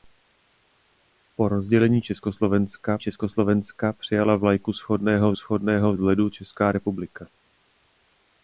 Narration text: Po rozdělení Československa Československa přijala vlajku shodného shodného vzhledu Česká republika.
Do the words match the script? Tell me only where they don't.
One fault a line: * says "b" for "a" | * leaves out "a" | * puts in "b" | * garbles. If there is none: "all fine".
all fine